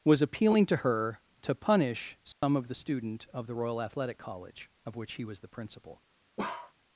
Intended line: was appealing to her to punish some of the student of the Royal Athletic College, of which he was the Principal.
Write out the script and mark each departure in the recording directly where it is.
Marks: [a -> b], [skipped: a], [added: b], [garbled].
was appealing to her to punish some of the student of the Royal Athletic College, of which he was the Principal.